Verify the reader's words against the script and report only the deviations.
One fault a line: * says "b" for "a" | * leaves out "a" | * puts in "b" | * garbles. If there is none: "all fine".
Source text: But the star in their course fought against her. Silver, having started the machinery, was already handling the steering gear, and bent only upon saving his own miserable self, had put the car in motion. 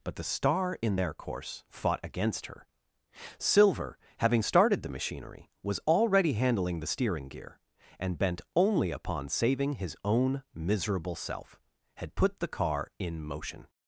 all fine